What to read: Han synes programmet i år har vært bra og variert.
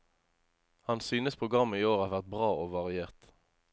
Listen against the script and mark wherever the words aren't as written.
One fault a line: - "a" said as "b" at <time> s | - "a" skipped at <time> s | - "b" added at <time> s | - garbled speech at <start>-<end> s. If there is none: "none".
none